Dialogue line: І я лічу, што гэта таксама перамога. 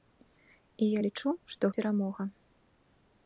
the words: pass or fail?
fail